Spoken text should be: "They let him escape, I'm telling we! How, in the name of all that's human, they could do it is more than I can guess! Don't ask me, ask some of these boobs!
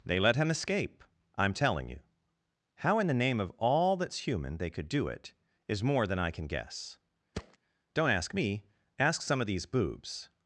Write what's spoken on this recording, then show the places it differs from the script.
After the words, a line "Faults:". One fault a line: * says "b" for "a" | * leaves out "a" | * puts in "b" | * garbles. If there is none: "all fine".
"They let him escape, I'm telling you! How, in the name of all that's human, they could do it is more than I can guess! Don't ask me, ask some of these boobs!
Faults:
* says "you" for "we"